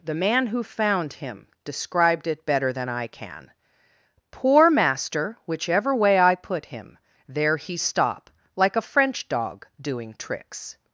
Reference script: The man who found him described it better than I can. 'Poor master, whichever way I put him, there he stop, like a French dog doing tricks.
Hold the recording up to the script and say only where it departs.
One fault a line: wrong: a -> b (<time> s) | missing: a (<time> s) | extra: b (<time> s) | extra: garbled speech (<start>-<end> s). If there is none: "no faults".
no faults